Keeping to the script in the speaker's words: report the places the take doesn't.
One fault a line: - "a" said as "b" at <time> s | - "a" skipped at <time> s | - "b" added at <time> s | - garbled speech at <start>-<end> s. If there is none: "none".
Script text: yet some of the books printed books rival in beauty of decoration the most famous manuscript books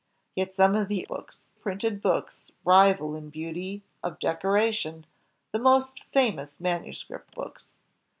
none